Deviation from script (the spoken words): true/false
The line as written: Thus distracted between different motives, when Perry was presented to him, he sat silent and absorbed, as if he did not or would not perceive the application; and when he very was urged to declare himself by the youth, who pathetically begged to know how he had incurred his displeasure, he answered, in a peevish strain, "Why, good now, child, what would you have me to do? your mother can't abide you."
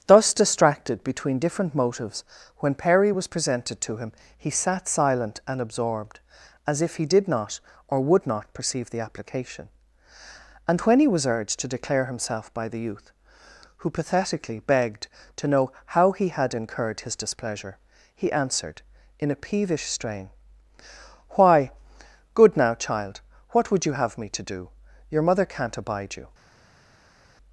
true